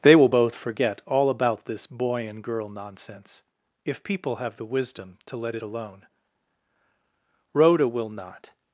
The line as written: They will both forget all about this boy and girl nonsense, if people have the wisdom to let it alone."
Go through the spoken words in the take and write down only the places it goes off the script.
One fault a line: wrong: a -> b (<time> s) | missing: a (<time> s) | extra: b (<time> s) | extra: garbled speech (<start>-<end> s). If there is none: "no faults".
extra: Rhoda will not (7.5 s)